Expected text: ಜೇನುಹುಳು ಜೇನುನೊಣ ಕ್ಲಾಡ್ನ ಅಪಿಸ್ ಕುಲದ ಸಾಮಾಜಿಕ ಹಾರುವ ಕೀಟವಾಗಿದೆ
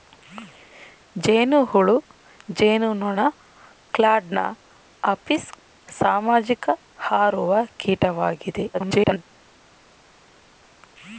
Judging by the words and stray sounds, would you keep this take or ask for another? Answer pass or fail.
fail